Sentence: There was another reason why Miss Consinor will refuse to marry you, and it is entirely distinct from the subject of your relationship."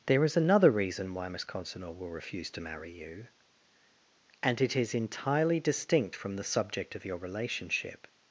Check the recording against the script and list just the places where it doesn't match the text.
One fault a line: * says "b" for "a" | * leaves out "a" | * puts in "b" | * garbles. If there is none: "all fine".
* says "is" for "was"